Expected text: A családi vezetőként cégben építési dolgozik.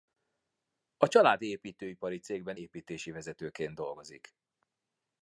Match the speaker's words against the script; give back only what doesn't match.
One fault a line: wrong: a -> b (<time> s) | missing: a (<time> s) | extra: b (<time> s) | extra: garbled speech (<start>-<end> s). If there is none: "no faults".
wrong: vezetőként -> építőipari (1.5 s)
extra: vezetőként (3.1 s)